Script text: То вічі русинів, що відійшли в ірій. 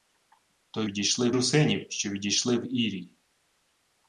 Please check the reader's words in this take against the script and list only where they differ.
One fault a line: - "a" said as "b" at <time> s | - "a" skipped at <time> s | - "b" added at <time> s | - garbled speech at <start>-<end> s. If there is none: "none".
- "вічі" said as "відійшли" at 0.8 s